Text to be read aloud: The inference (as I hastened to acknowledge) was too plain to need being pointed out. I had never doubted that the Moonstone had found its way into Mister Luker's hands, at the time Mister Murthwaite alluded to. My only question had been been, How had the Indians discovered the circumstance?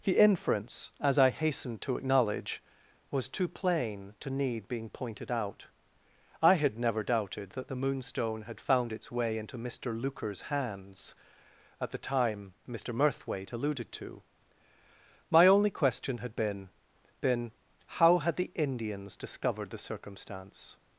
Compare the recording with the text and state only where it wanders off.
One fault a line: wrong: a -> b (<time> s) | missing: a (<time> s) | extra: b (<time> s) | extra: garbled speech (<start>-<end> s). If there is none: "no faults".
no faults